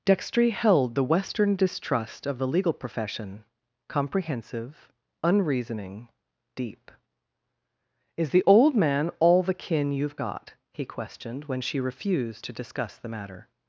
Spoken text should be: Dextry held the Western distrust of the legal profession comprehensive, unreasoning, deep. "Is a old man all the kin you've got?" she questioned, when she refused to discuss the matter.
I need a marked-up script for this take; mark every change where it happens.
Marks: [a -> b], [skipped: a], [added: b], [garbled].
Dextry held the Western distrust of the legal profession comprehensive, unreasoning, deep. "Is [a -> the] old man all the kin you've got?" [she -> he] questioned, when she refused to discuss the matter.